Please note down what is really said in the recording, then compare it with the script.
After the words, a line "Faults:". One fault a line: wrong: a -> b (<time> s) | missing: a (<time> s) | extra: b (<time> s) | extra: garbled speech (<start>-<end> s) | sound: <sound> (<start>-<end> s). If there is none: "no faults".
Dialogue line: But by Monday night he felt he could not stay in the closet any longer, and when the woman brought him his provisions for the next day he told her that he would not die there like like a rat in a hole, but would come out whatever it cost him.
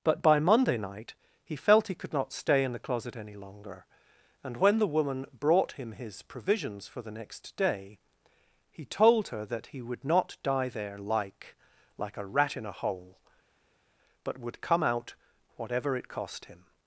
But by Monday night he felt he could not stay in the closet any longer, and when the woman brought him his provisions for the next day he told her that he would not die there like like a rat in a hole, but would come out whatever it cost him.
Faults:
no faults